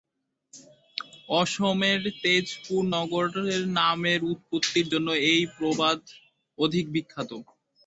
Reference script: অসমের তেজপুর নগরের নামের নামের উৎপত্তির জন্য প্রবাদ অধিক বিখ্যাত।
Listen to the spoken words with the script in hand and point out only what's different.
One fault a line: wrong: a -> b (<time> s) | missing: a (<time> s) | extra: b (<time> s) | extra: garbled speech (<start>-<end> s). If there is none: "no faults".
missing: নামের (4.2 s)
extra: এই (5.3 s)